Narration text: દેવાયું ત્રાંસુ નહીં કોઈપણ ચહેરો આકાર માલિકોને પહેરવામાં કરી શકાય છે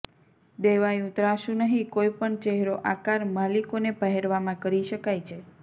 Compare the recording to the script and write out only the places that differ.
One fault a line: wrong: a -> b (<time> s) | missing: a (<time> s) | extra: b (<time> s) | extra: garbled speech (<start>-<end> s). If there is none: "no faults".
no faults